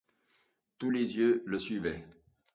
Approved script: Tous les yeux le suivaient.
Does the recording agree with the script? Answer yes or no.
yes